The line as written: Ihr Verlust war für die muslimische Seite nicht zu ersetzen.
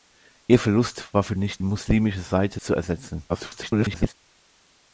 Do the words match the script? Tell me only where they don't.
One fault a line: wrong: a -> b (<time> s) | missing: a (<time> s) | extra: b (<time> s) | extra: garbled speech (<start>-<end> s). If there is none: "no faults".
wrong: die -> nicht (1.4 s)
missing: nicht (2.6 s)
extra: garbled speech (3.3-4.1 s)